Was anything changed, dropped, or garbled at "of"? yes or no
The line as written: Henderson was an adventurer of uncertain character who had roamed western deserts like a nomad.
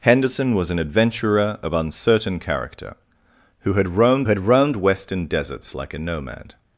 no